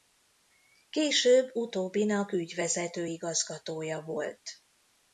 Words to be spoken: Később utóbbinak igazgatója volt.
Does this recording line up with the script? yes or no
no